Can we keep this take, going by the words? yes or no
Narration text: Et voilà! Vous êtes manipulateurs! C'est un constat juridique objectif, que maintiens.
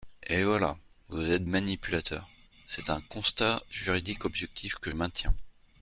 yes